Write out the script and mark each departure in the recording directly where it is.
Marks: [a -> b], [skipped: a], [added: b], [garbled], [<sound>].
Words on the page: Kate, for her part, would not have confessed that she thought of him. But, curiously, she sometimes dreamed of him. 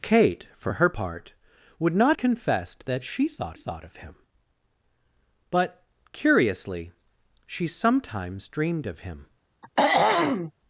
Kate, for her part, would not [skipped: have] confessed that she thought [added: thought] of him. But, curiously, she sometimes dreamed of him. [throat clearing]